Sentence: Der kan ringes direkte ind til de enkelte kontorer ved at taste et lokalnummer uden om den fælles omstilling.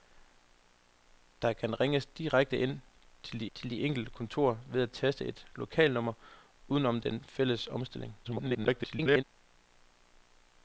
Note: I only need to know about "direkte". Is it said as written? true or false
true